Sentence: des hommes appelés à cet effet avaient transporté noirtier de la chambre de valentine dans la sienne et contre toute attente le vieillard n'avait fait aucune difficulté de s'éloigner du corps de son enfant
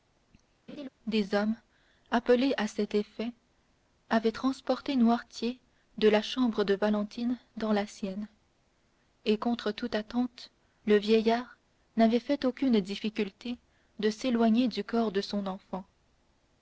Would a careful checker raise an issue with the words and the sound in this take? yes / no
yes